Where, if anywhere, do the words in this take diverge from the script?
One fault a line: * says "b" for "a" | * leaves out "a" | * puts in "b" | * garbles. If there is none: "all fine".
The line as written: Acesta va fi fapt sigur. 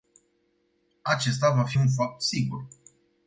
* puts in "un"